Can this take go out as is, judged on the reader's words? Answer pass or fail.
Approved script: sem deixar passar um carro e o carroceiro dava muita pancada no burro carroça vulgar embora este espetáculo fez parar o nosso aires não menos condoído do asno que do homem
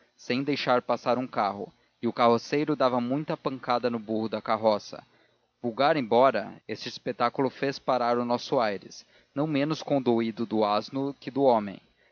fail